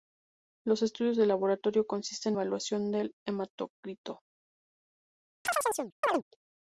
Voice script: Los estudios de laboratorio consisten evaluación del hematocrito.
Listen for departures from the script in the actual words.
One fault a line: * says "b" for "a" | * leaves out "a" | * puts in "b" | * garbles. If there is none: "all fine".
all fine